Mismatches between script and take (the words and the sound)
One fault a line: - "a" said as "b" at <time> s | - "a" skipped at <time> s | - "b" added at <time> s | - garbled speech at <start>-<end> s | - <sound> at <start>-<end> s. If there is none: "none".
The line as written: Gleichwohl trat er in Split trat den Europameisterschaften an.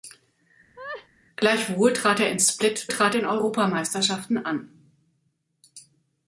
- laugh at 0.8-1.1 s